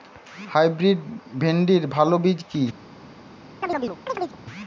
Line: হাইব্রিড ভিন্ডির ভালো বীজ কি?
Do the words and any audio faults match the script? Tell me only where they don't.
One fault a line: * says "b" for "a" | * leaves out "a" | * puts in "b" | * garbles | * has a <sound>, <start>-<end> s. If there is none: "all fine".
* has a chirp, 3.6-4.4 s